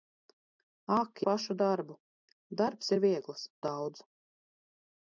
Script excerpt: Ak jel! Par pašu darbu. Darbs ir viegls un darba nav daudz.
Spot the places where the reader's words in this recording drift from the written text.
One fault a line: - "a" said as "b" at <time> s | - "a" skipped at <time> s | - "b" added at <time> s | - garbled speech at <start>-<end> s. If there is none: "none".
- "jel Par" skipped at 1.2 s
- "un darba nav" skipped at 3.5 s